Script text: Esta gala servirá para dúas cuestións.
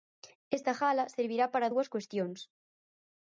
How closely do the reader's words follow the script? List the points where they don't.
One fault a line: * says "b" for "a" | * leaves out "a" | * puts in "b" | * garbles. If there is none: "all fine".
all fine